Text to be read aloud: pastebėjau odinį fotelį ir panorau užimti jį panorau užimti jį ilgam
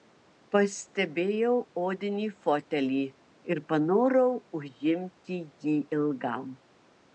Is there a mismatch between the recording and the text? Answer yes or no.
yes